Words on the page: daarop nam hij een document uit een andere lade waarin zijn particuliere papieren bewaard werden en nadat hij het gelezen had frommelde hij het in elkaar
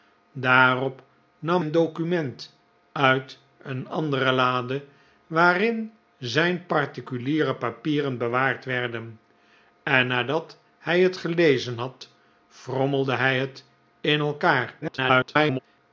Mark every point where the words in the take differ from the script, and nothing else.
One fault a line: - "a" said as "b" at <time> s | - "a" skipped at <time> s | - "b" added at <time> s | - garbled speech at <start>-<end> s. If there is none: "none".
- "hij" skipped at 1.6 s
- garbled speech at 14.8-15.6 s